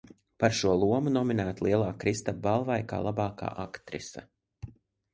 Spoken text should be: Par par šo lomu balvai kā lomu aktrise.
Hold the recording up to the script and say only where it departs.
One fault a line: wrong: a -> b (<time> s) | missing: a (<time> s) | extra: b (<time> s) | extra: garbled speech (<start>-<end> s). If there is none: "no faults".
missing: par (0.5 s)
extra: nominēta Lielā Kristapa (1.2 s)
wrong: lomu -> labākā (3.1 s)